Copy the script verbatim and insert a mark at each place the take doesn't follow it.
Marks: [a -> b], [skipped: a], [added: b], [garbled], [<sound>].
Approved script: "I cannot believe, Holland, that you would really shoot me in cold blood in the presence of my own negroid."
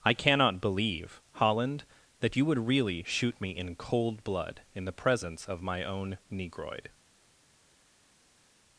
"I cannot believe, Holland, that you would really shoot me in cold blood in the presence of my own negroid."